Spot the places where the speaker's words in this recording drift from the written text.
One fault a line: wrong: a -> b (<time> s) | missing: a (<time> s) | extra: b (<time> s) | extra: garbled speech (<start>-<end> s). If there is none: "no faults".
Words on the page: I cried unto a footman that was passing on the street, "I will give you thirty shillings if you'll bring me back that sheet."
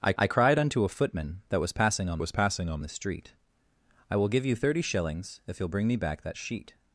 extra: I (0.2 s)
extra: was passing on (2.2 s)